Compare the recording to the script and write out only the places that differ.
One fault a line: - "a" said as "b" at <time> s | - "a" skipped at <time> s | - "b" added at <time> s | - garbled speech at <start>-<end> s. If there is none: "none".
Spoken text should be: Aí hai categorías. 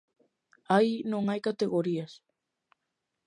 - "non" added at 1.1 s